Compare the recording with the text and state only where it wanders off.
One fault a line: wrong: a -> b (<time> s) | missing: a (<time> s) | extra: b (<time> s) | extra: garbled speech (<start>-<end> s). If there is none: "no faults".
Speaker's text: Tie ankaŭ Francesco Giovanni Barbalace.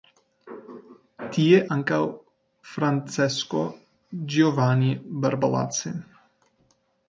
no faults